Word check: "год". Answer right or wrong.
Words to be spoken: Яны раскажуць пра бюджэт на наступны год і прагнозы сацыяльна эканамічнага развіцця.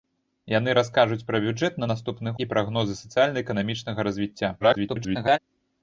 wrong